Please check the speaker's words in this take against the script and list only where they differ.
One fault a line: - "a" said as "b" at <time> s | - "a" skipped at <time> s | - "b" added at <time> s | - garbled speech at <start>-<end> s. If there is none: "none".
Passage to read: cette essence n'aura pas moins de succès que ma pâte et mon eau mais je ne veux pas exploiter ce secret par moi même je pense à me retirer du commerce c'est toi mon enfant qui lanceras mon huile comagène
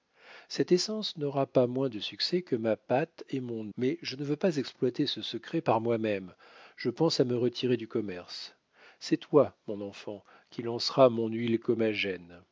- "eau" skipped at 3.7 s